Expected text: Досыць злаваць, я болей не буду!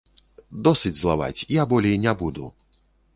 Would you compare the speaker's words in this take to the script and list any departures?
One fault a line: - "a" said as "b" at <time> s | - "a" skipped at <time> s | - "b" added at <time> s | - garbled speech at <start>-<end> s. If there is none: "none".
none